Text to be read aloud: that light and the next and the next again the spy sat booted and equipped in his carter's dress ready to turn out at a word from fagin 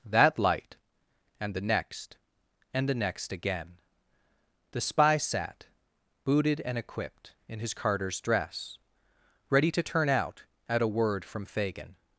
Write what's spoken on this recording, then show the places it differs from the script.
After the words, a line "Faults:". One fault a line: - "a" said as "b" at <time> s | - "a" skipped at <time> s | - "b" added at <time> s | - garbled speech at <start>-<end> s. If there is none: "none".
that light and the next and the next again the spy sat booted and equipped in his carter's dress ready to turn out at a word from fagin
Faults:
none